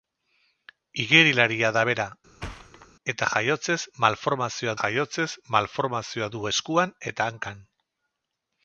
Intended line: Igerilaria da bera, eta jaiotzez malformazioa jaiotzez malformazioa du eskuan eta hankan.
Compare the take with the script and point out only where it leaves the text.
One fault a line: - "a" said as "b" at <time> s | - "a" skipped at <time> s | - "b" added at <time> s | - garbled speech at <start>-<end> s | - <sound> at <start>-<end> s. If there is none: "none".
- thud at 2.4-2.9 s